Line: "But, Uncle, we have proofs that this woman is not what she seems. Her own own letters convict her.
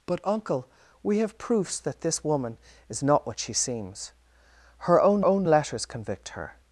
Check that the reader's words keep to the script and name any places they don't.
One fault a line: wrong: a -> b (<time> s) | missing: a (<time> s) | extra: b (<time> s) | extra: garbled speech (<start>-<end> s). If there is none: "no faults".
no faults